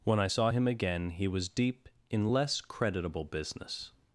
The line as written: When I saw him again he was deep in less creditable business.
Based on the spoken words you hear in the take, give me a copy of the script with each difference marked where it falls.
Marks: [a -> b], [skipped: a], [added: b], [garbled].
When I saw him again he was deep in less creditable business.